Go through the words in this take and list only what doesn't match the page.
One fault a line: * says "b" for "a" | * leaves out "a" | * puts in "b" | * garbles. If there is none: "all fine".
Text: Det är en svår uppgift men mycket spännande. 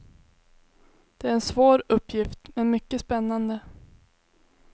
all fine